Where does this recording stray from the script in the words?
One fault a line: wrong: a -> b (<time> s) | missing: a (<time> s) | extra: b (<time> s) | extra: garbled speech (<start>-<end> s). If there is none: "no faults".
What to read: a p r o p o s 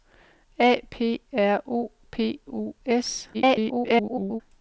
extra: garbled speech (3.3-4.4 s)